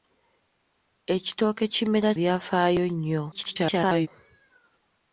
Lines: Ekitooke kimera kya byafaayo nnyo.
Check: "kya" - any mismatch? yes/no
yes